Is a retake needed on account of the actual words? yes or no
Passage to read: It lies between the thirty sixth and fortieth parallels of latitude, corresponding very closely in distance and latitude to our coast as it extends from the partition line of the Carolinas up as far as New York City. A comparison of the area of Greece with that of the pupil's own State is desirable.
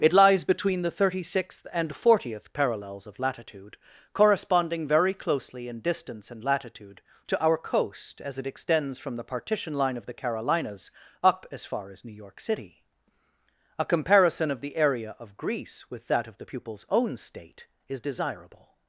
no